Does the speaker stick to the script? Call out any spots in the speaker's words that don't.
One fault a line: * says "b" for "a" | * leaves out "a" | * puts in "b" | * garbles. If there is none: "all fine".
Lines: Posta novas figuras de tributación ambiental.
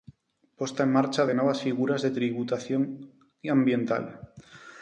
* puts in "en marcha de"